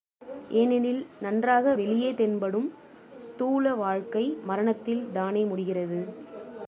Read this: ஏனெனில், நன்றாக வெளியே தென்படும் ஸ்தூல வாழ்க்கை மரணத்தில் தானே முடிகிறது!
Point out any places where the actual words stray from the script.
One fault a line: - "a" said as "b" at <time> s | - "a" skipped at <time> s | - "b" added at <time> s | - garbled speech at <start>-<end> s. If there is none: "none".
none